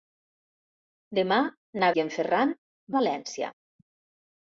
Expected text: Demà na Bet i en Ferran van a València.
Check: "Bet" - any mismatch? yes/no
yes